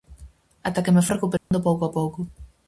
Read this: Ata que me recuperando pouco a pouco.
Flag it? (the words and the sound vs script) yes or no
yes